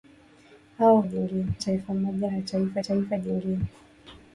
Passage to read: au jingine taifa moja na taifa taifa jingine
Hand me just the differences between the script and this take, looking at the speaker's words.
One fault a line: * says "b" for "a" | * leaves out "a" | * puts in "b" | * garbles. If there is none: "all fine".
all fine